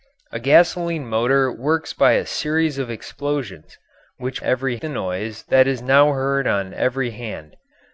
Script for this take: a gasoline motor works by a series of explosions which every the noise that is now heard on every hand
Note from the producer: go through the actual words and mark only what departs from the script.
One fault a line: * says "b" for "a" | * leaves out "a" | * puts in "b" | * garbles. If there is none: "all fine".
all fine